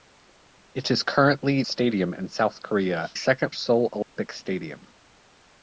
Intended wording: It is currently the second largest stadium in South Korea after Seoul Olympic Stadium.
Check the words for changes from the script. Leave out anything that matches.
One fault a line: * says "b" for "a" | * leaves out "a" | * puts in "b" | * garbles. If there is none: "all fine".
* leaves out "the second largest"
* says "second" for "after"